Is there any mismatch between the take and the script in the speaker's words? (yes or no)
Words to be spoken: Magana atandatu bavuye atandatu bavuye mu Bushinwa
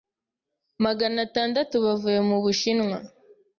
yes